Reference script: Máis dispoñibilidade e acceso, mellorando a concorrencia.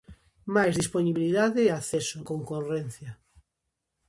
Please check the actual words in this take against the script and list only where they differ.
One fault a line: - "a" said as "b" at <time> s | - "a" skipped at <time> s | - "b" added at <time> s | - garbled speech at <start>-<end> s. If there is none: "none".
- "mellorando a" skipped at 2.2 s